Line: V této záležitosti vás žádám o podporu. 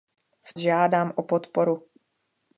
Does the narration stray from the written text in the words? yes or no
yes